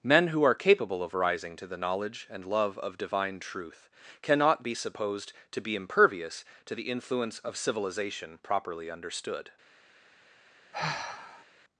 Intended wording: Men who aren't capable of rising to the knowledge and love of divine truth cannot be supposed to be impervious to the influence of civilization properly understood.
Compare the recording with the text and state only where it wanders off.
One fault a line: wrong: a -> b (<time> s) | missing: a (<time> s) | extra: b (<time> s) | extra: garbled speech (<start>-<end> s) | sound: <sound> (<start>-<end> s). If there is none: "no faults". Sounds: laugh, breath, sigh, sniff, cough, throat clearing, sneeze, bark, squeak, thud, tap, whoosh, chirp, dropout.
wrong: aren't -> are (0.4 s)
sound: sigh (10.7-11.5 s)